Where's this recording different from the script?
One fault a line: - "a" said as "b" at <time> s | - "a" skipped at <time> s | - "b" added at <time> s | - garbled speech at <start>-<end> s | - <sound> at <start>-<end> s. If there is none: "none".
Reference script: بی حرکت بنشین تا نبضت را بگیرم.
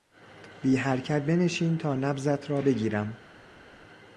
none